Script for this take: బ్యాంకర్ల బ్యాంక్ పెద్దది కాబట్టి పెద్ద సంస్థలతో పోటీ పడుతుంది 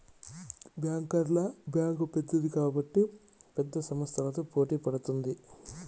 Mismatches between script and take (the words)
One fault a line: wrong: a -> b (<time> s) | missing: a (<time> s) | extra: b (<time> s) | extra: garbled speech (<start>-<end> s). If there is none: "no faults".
no faults